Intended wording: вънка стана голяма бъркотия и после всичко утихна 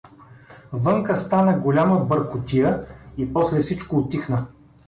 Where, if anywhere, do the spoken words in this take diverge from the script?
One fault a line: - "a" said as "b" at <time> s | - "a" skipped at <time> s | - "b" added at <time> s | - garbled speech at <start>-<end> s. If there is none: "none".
none